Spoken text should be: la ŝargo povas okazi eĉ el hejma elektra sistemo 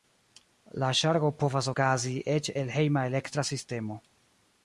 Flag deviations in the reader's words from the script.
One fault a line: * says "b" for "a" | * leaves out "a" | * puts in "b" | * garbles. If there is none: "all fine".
all fine